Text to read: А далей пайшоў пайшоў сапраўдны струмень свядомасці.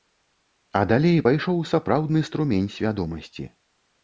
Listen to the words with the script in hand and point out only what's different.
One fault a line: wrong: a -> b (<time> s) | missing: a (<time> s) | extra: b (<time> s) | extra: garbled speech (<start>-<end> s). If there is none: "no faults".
missing: пайшоў (1.6 s)